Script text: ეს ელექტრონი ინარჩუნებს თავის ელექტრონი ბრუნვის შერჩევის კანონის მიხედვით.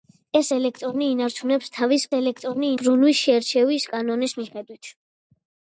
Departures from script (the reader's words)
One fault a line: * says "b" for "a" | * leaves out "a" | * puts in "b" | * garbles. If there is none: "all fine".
all fine